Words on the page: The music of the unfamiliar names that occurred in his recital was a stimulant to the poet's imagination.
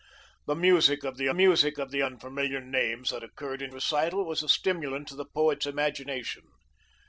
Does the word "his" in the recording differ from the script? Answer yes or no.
yes